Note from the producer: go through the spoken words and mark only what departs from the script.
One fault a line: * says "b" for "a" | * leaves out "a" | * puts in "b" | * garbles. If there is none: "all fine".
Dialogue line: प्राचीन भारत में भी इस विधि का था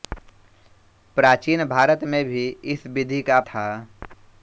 all fine